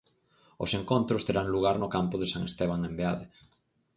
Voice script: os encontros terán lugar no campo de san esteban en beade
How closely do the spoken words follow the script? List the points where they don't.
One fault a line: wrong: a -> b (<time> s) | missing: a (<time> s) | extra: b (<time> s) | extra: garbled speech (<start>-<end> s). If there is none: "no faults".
no faults